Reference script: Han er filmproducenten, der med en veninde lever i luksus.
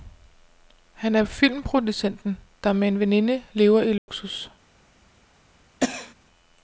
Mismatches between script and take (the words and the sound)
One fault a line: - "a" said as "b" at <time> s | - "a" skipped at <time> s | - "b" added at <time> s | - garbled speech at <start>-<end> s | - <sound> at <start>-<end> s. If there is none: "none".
- dropout at 4.0-4.1 s
- cough at 5.8-6.1 s